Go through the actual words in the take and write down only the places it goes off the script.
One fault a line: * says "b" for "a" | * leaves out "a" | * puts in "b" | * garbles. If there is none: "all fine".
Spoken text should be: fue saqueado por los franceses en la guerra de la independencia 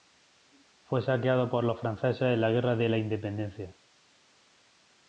all fine